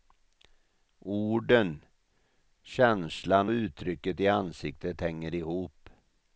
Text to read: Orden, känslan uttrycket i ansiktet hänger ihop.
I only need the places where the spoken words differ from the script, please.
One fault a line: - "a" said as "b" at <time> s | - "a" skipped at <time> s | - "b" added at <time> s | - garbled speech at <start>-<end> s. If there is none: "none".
none